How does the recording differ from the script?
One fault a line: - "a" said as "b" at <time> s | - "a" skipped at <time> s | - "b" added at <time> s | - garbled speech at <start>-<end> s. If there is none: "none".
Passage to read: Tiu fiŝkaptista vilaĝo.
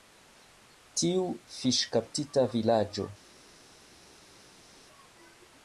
none